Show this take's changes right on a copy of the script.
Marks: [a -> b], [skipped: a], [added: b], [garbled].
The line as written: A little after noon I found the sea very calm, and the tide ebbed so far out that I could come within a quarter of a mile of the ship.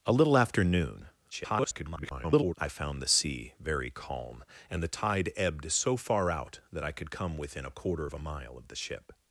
A little after noon [garbled] I found the sea very calm, and the tide ebbed so far out that I could come within a quarter of a mile of the ship.